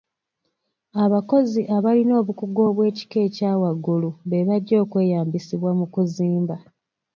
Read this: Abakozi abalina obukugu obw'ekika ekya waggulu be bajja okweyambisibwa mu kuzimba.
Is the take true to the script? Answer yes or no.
yes